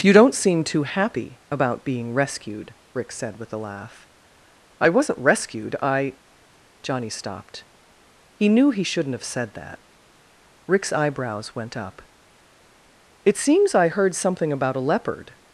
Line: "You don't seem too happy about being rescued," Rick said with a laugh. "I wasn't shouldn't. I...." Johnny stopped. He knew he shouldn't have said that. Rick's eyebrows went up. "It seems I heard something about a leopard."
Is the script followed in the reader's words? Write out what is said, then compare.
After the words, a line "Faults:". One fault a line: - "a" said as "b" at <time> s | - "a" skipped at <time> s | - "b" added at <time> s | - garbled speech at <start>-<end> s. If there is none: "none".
"You don't seem too happy about being rescued," Rick said with a laugh. "I wasn't rescued. I...." Johnny stopped. He knew he shouldn't have said that. Rick's eyebrows went up. "It seems I heard something about a leopard."
Faults:
- "shouldn't" said as "rescued" at 5.2 s